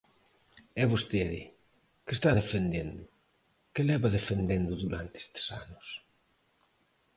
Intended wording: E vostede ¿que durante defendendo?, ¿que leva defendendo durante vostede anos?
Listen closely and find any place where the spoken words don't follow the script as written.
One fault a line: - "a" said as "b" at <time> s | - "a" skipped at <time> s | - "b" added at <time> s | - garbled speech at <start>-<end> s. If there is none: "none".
- "durante" said as "está" at 2.2 s
- "vostede" said as "estes" at 5.2 s